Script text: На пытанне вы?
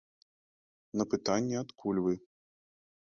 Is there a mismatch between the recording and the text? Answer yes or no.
yes